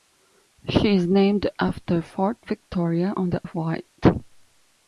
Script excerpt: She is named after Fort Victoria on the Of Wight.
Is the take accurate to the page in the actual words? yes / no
yes